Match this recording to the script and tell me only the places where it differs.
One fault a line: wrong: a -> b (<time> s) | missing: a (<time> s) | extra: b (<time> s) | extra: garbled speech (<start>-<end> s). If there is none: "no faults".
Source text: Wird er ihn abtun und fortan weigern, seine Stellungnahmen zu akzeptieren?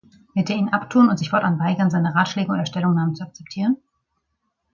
extra: sich (1.2 s)
extra: Ratschläge oder (2.2 s)